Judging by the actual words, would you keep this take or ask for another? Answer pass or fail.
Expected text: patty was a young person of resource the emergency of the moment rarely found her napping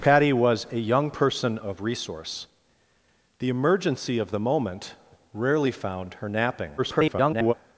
fail